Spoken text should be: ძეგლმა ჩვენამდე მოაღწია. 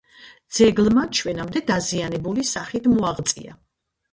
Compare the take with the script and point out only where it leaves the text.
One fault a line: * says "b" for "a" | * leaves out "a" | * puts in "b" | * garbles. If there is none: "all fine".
* puts in "დაზიანებული სახით"